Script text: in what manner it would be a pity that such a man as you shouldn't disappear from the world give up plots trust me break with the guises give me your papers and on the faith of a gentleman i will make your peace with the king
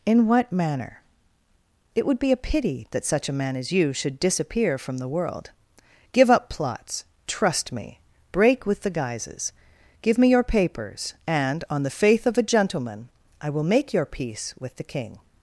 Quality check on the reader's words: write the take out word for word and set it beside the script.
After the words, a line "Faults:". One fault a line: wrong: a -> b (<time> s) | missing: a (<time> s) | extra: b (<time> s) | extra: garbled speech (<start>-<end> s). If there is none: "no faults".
in what manner it would be a pity that such a man as you should disappear from the world give up plots trust me break with the guises give me your papers and on the faith of a gentleman i will make your peace with the king
Faults:
wrong: shouldn't -> should (3.9 s)